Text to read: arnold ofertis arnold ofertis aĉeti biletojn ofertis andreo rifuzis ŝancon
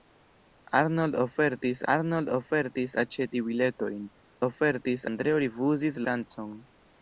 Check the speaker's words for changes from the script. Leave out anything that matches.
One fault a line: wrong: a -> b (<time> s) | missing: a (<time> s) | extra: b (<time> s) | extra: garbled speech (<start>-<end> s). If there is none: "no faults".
no faults